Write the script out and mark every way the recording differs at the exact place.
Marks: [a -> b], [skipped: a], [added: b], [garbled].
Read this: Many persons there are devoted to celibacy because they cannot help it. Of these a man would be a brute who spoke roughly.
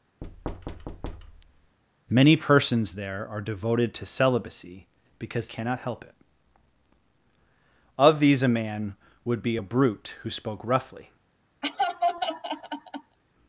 Many persons there are devoted to celibacy because [skipped: they] cannot help it. Of these a man would be a brute who spoke roughly.